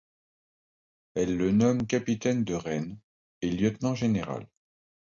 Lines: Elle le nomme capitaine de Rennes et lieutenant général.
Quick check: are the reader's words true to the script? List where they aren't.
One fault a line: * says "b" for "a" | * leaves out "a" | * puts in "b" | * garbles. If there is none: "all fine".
all fine